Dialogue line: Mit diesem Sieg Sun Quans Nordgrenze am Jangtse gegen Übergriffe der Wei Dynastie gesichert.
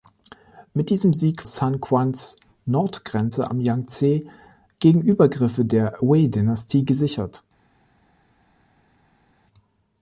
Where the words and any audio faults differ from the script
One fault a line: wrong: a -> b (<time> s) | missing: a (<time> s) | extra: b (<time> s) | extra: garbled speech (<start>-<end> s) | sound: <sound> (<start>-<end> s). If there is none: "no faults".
no faults